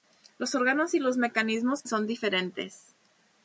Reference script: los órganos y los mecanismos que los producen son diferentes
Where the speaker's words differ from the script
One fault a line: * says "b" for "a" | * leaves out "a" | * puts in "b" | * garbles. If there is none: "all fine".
* leaves out "que los producen"